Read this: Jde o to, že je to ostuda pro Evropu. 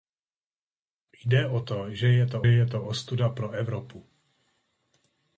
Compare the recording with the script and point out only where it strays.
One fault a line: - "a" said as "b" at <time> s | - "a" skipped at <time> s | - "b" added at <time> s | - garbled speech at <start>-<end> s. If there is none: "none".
- "je to" added at 2.5 s